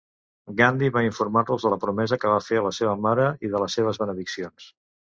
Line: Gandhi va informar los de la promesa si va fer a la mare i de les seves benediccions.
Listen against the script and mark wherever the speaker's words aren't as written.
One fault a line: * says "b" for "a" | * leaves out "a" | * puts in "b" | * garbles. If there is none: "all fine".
* says "que" for "si"
* puts in "seva"